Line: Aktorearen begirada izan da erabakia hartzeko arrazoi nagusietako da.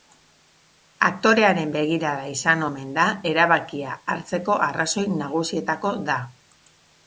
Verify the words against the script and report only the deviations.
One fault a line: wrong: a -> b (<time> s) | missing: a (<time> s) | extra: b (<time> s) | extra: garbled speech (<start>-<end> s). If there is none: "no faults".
extra: omen (2.7 s)